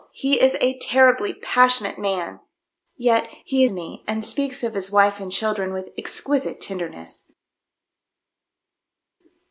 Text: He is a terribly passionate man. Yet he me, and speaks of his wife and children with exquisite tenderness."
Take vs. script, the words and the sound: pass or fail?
pass